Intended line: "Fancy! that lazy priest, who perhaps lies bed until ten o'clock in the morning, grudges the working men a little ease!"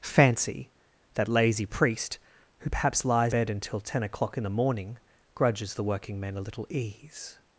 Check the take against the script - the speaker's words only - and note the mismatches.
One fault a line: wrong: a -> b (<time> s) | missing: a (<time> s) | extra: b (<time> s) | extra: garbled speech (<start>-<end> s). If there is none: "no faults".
no faults